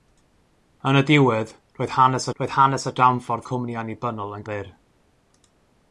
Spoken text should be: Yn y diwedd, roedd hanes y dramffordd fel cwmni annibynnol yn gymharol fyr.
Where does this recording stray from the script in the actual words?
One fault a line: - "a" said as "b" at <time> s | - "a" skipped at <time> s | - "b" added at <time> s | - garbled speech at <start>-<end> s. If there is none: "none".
- "roedd hanes" added at 2.4 s
- "fel" skipped at 3.5 s
- "gymharol" skipped at 4.5 s